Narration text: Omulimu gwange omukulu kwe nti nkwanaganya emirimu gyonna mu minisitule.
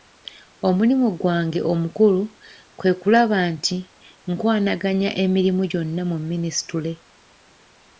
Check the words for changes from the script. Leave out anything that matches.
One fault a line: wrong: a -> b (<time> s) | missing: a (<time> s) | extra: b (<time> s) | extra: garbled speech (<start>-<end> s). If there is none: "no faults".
extra: kulaba (3.0 s)